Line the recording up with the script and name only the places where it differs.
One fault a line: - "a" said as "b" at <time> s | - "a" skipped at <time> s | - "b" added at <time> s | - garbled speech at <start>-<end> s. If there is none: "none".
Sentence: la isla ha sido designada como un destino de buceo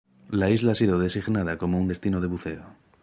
none